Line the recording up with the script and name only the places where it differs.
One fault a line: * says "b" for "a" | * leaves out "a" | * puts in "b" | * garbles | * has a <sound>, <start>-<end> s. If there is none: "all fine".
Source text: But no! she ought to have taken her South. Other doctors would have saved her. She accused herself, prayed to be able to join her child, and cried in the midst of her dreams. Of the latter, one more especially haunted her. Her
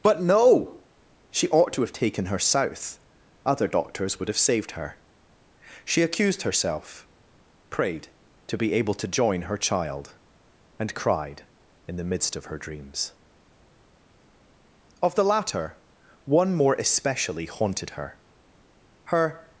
all fine